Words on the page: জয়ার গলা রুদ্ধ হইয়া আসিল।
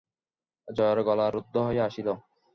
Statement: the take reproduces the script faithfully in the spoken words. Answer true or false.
true